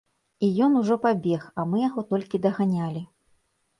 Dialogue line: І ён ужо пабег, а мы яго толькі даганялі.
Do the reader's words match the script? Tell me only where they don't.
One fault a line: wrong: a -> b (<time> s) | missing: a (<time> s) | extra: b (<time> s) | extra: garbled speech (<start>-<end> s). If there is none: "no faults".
no faults